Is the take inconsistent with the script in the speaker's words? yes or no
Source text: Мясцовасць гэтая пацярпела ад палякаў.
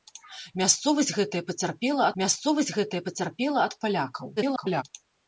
yes